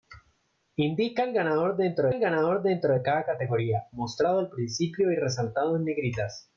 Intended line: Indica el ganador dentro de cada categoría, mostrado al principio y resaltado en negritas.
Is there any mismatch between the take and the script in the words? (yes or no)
yes